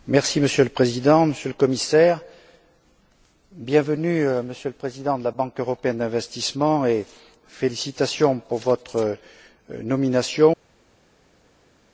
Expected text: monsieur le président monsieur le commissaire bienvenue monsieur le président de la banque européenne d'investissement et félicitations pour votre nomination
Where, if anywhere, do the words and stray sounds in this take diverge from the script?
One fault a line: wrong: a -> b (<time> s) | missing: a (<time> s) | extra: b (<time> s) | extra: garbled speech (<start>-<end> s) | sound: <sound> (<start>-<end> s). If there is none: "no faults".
no faults